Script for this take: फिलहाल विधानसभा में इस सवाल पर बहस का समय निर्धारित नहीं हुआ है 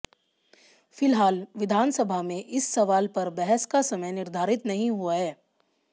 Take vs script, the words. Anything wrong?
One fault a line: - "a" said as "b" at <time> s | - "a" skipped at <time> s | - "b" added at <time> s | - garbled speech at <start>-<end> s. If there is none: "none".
none